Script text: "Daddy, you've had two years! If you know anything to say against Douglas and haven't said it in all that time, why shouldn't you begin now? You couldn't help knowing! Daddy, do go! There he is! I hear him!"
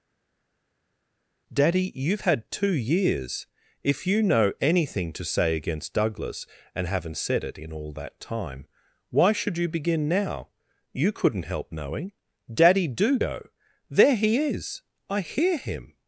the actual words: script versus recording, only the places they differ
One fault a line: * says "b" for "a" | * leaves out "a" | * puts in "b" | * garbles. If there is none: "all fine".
* says "should" for "shouldn't"